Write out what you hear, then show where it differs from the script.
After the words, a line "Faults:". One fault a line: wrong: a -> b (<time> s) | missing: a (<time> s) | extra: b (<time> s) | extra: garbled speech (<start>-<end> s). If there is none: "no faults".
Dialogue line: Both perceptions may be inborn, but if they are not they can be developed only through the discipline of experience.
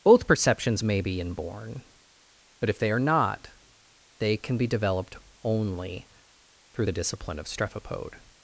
Both perceptions may be inborn, but if they are not they can be developed only through the discipline of strephopode.
Faults:
wrong: experience -> strephopode (7.5 s)